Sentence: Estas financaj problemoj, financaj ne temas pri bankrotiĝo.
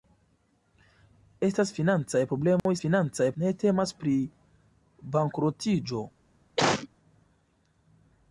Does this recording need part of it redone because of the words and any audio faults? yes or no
yes